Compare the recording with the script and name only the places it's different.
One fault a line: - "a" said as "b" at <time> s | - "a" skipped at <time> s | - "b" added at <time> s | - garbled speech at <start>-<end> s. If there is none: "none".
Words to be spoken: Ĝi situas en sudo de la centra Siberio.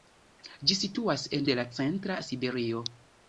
- "sudo" skipped at 1.4 s